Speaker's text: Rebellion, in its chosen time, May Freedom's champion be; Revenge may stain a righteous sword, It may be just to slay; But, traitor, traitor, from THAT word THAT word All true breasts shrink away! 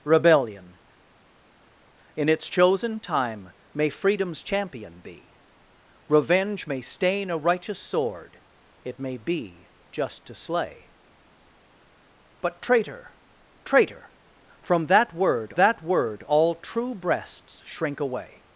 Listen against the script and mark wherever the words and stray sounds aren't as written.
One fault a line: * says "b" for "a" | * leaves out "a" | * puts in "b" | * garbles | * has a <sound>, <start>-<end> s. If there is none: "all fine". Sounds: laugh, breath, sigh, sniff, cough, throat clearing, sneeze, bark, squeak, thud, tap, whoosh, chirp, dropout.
all fine